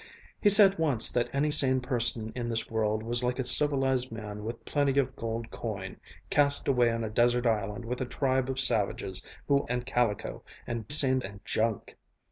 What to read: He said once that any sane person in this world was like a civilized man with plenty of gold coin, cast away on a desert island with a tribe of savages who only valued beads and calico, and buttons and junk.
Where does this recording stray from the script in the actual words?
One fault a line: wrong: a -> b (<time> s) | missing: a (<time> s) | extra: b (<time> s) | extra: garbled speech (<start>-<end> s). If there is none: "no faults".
missing: only valued beads (9.6 s)
wrong: buttons -> sane (10.9 s)